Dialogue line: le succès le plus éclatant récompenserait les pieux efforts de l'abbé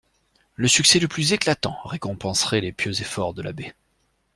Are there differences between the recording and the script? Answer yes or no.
no